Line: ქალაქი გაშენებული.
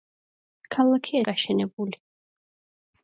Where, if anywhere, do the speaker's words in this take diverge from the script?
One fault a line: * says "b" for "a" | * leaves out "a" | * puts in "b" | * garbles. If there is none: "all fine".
all fine